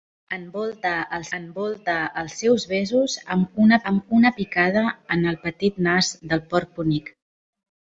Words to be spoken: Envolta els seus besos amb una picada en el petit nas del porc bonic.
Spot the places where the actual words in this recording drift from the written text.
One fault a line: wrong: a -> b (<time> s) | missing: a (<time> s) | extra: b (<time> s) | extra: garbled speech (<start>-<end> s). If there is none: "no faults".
extra: envolta els (1.4 s)
extra: amb una (3.9 s)